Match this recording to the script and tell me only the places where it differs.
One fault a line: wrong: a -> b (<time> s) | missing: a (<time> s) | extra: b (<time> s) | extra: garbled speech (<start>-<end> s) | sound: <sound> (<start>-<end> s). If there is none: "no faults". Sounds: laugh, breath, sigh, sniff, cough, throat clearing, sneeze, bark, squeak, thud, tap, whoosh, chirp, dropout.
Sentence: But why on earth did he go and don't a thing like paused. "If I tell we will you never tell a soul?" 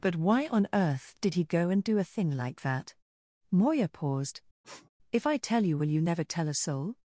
wrong: don't -> do (1.8 s)
extra: that Moya (2.6 s)
sound: sniff (4.6-4.9 s)
wrong: we -> you (5.6 s)